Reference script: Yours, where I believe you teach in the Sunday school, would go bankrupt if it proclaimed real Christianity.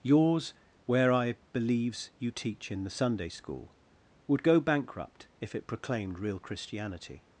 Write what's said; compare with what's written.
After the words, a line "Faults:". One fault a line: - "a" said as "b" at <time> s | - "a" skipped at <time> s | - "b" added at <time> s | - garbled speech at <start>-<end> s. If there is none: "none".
Yours, where I believes you teach in the Sunday school, would go bankrupt if it proclaimed real Christianity.
Faults:
- "believe" said as "believes" at 1.5 s